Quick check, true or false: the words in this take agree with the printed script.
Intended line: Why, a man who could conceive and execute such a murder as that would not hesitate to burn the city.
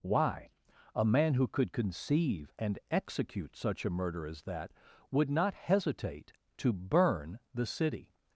true